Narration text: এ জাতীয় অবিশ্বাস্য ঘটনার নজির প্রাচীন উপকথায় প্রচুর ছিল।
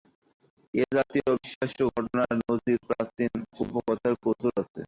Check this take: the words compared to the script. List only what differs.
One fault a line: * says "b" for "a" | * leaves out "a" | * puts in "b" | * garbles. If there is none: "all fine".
* says "আছে" for "ছিল"